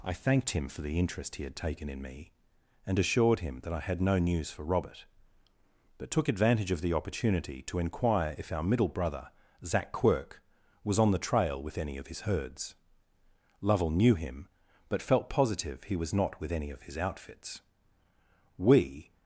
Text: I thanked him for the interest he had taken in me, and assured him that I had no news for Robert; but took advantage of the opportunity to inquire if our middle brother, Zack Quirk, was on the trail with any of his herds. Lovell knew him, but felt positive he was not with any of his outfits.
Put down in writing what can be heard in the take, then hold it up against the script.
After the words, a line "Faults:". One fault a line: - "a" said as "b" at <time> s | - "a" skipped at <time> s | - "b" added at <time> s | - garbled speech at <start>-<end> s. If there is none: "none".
I thanked him for the interest he had taken in me, and assured him that I had no news for Robert; but took advantage of the opportunity to inquire if our middle brother, Zack Quirk, was on the trail with any of his herds. Lovell knew him, but felt positive he was not with any of his outfits. We
Faults:
- "We" added at 18.6 s